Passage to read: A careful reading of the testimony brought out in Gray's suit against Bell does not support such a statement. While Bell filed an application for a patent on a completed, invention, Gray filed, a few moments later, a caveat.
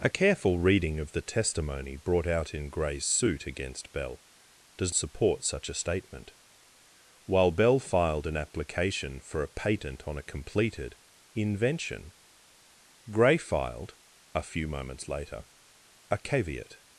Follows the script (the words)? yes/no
no